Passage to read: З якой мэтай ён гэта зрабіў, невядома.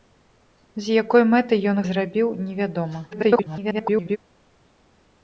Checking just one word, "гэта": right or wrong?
wrong